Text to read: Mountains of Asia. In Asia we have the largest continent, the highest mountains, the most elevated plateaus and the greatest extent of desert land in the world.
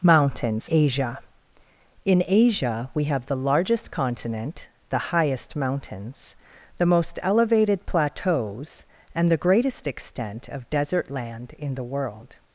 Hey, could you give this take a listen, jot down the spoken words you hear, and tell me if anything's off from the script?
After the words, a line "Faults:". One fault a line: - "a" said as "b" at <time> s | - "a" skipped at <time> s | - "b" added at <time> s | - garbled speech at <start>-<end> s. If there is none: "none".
Mountains Asia. In Asia we have the largest continent, the highest mountains, the most elevated plateaus and the greatest extent of desert land in the world.
Faults:
- "of" skipped at 0.7 s